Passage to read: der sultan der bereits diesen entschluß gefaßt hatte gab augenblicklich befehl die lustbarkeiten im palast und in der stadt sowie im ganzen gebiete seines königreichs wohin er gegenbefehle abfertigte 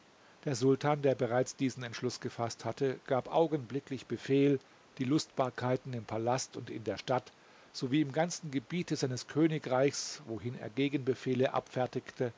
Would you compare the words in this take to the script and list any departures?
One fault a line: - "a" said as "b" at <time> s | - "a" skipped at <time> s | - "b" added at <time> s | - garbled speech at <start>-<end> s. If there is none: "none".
none